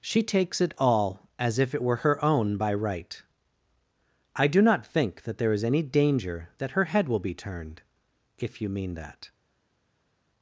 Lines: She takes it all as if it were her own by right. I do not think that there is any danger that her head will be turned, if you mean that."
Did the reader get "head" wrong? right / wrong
right